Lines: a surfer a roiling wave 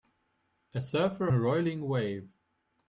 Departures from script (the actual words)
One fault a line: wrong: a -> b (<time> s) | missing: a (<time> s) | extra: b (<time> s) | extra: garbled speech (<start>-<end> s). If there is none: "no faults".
no faults